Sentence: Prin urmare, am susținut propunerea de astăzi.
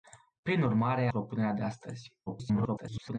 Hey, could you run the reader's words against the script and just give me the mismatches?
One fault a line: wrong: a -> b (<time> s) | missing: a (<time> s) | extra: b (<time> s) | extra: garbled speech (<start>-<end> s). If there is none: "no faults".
missing: am susținut (1.1 s)
extra: garbled speech (2.3-3.2 s)